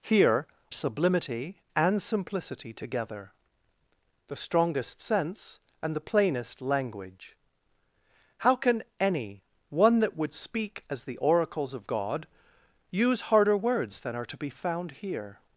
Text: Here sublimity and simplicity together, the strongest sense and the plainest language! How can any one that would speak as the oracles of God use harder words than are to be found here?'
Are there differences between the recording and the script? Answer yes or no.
no